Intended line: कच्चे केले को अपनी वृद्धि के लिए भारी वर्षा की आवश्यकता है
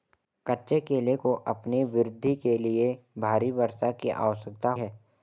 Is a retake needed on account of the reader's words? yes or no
no